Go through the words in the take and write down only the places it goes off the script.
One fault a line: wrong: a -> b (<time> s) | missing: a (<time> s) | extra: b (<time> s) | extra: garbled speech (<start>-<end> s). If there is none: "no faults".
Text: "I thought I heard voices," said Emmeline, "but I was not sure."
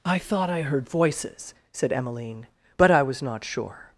no faults